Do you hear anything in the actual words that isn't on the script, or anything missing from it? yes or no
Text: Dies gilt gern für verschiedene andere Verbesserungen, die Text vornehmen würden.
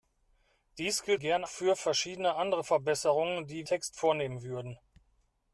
no